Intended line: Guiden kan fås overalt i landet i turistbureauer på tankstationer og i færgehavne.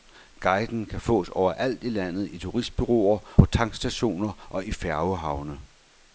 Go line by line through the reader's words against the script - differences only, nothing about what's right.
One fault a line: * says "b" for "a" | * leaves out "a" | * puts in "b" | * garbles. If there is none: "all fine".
all fine